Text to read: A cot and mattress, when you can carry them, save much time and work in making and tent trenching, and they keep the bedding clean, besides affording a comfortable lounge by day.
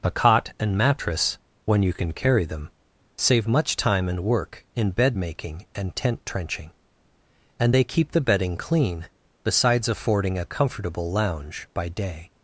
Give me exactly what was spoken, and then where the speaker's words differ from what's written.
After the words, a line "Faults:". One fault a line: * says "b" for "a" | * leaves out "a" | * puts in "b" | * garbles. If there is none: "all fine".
A cot and mattress, when you can carry them, save much time and work in bed making and tent trenching, and they keep the bedding clean, besides affording a comfortable lounge by day.
Faults:
* puts in "bed"